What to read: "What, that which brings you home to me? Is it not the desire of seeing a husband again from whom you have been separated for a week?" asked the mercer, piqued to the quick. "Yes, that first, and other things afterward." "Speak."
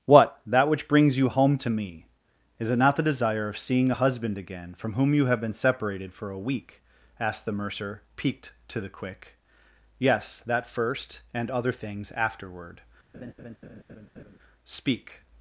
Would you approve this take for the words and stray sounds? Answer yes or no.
no